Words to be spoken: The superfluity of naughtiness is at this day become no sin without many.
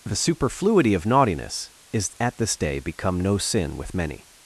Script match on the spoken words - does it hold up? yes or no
no